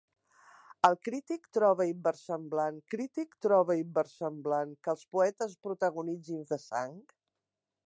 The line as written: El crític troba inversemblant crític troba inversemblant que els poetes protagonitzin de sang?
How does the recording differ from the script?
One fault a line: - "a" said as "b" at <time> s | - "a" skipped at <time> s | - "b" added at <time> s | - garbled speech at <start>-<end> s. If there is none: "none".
none